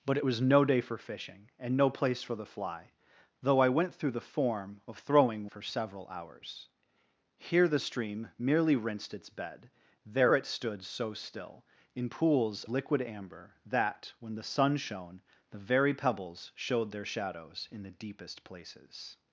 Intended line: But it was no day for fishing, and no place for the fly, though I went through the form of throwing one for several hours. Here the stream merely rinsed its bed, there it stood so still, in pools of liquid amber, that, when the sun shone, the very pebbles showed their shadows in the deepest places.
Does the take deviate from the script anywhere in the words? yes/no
yes